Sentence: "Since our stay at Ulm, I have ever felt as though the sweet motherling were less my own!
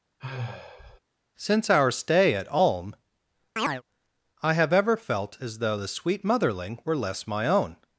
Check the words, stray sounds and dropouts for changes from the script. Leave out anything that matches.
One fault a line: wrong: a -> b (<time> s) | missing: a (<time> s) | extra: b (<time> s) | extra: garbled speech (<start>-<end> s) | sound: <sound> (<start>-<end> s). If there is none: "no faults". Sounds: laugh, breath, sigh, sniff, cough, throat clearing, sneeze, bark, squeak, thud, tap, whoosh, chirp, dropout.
sound: sigh (0.2-1.0 s)
sound: chirp (3.6-3.8 s)